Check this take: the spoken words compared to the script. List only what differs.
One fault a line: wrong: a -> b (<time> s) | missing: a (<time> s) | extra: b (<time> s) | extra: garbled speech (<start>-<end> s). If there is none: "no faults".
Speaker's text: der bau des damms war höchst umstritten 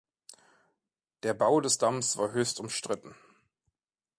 no faults